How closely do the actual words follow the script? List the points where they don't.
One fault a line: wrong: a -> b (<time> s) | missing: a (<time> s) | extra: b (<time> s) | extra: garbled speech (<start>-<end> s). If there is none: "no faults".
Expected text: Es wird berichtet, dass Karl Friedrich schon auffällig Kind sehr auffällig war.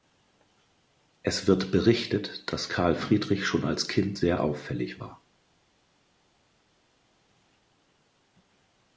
wrong: auffällig -> als (3.7 s)